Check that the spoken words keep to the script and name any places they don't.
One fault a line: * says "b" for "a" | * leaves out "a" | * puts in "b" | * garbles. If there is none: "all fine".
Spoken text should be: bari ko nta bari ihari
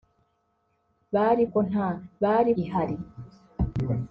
all fine